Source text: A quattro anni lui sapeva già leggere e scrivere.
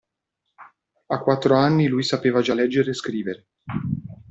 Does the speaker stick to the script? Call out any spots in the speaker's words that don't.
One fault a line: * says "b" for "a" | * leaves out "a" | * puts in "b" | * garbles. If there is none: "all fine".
all fine